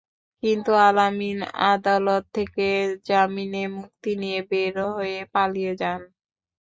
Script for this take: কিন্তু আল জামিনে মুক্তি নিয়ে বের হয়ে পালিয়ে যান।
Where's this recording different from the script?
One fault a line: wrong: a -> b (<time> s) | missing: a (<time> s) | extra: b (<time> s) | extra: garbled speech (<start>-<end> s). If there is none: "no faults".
extra: আমিন আদালত থেকে (1.0 s)